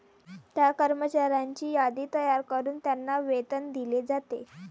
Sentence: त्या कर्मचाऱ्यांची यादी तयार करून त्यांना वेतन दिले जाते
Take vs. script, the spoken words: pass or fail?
pass